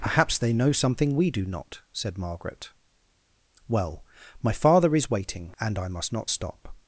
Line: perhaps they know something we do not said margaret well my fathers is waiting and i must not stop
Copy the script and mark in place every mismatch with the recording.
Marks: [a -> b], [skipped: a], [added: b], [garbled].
perhaps they know something we do not said margaret well my [fathers -> father] is waiting and i must not stop